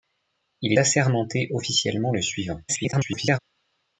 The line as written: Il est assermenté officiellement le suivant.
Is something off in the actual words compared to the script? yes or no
yes